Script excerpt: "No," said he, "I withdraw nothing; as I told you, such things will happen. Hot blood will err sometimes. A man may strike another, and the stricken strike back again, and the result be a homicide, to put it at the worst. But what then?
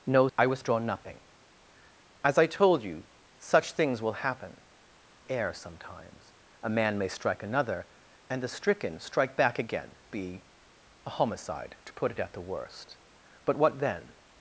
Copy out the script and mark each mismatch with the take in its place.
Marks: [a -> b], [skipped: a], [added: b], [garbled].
"No," [skipped: said he,] "I withdraw nothing; as I told you, such things will happen. [skipped: Hot blood will] err sometimes. A man may strike another, and the stricken strike back again, [skipped: and the result] be a homicide, to put it at the worst. But what then?